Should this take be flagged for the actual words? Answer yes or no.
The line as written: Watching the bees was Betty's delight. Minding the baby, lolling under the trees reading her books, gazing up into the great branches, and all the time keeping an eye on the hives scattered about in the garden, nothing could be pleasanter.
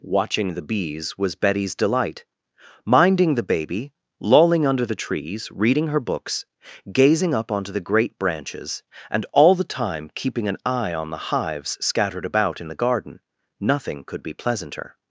yes